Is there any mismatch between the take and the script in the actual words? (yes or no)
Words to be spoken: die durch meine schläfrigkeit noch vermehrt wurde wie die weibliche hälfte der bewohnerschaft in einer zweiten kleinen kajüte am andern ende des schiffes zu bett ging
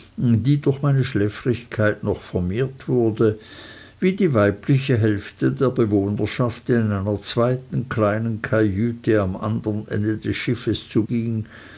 yes